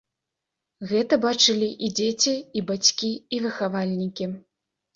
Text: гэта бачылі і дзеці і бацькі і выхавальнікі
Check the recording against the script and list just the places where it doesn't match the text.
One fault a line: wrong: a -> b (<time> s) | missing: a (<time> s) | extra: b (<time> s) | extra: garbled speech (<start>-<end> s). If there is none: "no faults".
no faults